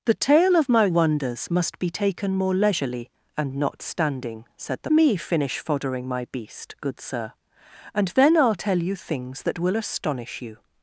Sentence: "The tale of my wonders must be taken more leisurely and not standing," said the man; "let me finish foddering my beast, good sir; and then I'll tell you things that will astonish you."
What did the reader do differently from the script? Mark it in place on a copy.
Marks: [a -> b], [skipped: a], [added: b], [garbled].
"The tale of my wonders must be taken more leisurely and not standing," said the [skipped: man; "let] me finish foddering my beast, good sir; and then I'll tell you things that will astonish you."